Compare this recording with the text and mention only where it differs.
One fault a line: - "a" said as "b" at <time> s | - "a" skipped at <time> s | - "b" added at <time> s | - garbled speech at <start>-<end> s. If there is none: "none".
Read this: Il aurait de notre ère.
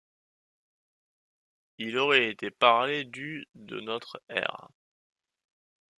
- "été parlé du" added at 2.3 s